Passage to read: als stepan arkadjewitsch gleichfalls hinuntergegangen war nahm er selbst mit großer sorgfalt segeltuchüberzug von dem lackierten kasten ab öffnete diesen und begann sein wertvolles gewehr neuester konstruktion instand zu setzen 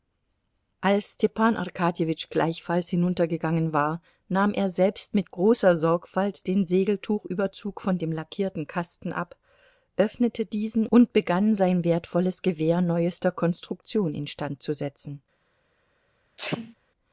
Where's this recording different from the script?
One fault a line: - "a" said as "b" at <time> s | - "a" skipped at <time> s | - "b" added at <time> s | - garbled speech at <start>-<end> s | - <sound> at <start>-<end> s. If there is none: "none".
- "den" added at 6.5 s
- sneeze at 16.4-16.7 s